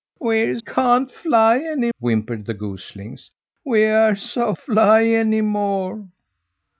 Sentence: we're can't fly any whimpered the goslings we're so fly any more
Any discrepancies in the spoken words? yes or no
no